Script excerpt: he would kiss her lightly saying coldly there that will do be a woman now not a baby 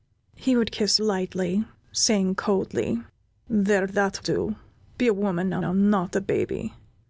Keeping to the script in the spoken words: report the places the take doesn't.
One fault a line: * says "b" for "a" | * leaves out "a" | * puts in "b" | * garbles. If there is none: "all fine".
* leaves out "her"
* leaves out "will"
* puts in "now"